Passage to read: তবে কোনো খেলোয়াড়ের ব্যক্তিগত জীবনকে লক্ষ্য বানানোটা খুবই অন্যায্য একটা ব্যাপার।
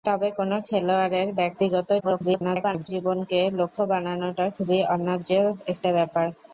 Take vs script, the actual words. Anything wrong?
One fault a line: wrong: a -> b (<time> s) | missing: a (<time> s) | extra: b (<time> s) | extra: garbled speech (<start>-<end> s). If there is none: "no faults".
extra: garbled speech (2.0-2.9 s)